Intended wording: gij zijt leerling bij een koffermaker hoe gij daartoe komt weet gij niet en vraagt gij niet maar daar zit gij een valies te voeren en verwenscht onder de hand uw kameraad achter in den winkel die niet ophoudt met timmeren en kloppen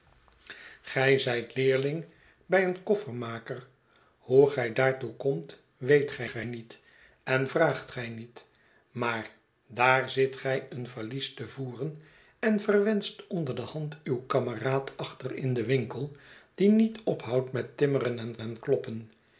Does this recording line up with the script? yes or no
no